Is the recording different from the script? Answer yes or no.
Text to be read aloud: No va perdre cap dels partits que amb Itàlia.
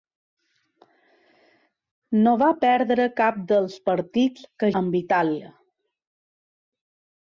no